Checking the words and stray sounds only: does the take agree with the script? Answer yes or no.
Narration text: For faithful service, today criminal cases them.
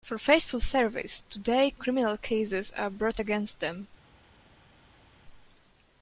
no